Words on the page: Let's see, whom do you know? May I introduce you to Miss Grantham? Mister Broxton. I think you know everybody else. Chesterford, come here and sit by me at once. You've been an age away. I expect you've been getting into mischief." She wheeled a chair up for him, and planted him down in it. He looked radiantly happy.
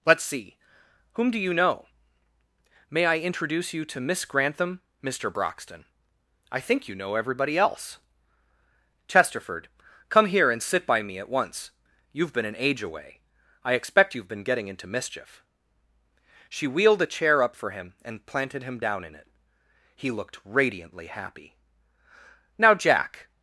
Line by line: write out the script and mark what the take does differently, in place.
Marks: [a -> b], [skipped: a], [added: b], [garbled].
Let's see, whom do you know? May I introduce you to Miss Grantham? Mister Broxton. I think you know everybody else. Chesterford, come here and sit by me at once. You've been an age away. I expect you've been getting into mischief." She wheeled a chair up for him, and planted him down in it. He looked radiantly happy. [added: Now Jack]